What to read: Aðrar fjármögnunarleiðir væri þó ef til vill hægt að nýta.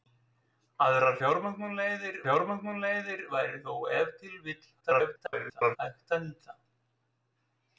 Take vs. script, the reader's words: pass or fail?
fail